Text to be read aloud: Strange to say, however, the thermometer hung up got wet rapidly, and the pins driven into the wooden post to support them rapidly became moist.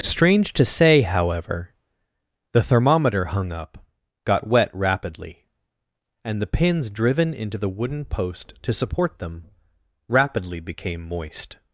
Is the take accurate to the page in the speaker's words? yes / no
yes